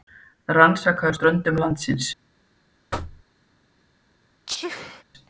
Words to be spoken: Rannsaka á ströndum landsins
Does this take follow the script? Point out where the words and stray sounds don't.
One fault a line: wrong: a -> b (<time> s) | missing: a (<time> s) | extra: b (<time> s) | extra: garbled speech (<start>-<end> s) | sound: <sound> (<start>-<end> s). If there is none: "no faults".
sound: thud (2.9-3.2 s)
sound: sneeze (4.5-5.0 s)